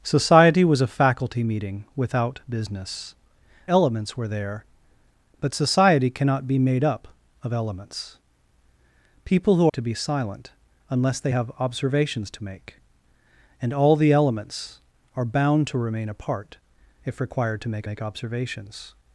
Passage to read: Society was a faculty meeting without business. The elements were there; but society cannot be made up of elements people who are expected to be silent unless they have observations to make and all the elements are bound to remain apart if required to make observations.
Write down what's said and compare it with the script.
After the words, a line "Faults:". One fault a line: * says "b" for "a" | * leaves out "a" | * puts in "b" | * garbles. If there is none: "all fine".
Society was a faculty meeting without business. Elements were there; but society cannot be made up of elements people who to be silent unless they have observations to make and all the elements are bound to remain apart if required to make make observations.
Faults:
* leaves out "The"
* leaves out "are expected"
* puts in "make"